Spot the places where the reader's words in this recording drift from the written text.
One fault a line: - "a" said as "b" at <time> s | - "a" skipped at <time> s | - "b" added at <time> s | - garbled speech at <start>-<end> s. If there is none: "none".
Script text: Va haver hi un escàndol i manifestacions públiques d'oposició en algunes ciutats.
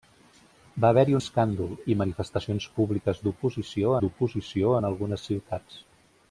- "un" skipped at 1.2 s
- "d'oposició" added at 4.0 s